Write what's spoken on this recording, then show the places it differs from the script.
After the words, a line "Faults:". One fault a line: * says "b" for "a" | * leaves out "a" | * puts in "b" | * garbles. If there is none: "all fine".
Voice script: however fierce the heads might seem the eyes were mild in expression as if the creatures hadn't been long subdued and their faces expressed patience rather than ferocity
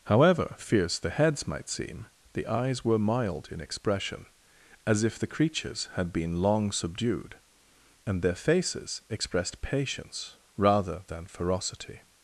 however fierce the heads might seem the eyes were mild in expression as if the creatures had been long subdued and their faces expressed patience rather than ferocity
Faults:
* says "had" for "hadn't"